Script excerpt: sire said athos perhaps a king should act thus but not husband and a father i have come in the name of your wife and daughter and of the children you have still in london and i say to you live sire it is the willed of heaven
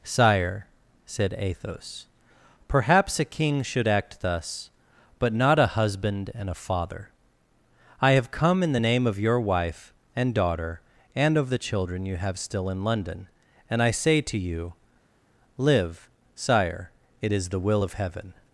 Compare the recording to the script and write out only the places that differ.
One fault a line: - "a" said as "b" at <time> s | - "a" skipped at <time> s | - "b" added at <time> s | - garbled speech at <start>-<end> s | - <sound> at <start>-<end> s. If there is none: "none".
- "a" added at 5.6 s
- "willed" said as "will" at 17.6 s